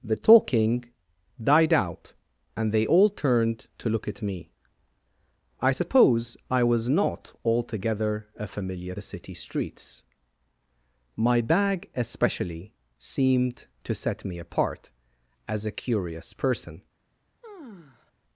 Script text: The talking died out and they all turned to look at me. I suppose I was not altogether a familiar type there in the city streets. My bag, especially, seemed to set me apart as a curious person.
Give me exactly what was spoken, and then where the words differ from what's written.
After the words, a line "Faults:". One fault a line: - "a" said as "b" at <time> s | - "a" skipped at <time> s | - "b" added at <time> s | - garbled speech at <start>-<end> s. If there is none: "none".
The talking died out and they all turned to look at me. I suppose I was not altogether a familiar the city streets. My bag, especially, seemed to set me apart as a curious person.
Faults:
- "type there in" skipped at 8.9 s